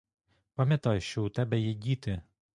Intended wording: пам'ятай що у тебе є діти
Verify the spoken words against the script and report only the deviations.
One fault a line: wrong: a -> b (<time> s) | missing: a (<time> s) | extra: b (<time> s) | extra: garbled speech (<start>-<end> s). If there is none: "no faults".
no faults